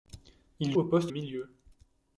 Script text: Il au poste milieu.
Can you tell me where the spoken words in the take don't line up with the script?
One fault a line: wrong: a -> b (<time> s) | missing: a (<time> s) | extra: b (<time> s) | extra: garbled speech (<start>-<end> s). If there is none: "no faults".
no faults